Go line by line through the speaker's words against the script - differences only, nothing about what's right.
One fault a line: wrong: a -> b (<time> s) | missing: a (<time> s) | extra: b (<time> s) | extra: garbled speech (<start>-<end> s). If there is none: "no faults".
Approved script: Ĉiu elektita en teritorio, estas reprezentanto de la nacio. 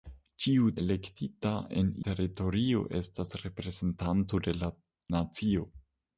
no faults